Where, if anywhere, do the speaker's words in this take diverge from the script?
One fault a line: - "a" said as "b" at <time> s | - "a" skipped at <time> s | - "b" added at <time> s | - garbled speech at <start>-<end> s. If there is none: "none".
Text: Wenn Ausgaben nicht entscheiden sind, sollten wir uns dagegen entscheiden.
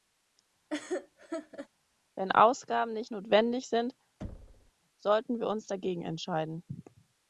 - "entscheiden" said as "notwendig" at 3.1 s